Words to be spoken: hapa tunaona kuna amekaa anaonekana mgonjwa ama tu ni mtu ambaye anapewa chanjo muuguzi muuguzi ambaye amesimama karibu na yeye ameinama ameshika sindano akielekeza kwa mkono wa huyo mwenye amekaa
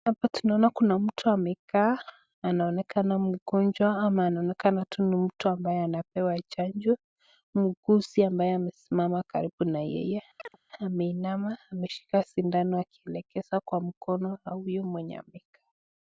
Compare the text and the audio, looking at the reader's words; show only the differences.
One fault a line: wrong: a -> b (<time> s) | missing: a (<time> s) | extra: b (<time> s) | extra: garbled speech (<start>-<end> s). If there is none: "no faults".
extra: mtu (1.0 s)
extra: anaonekana (4.2 s)
missing: muuguzi (8.2 s)